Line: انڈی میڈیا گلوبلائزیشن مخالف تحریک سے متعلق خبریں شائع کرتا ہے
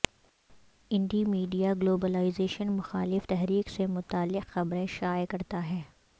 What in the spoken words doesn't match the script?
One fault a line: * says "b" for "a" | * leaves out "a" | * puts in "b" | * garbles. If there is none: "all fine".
all fine